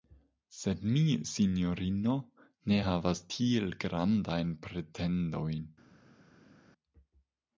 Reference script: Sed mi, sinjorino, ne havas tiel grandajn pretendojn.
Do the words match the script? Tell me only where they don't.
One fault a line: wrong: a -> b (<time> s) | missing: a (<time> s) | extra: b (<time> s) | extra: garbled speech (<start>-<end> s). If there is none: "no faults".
no faults